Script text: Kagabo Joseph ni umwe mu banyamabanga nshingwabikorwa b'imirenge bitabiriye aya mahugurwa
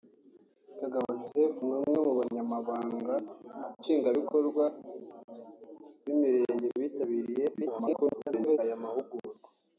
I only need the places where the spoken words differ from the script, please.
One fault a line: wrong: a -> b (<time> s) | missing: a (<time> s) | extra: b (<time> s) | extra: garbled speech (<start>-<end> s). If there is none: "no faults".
extra: garbled speech (7.5-8.6 s)